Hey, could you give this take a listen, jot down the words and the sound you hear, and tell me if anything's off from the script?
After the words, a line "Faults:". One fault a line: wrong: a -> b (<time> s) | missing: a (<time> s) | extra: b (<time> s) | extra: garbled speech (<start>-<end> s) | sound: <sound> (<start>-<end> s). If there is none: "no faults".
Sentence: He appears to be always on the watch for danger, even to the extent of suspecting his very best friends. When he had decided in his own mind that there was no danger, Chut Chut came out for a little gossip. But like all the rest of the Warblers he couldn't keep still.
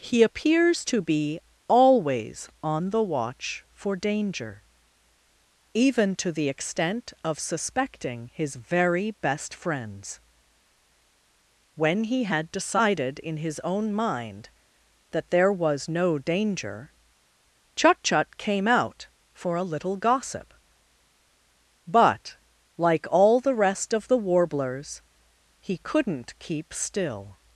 He appears to be always on the watch for danger, even to the extent of suspecting his very best friends. When he had decided in his own mind that there was no danger, Chut Chut came out for a little gossip. But like all the rest of the Warblers he couldn't keep still.
Faults:
no faults